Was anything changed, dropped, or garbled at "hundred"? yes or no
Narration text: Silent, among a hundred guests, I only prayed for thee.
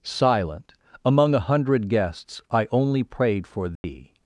no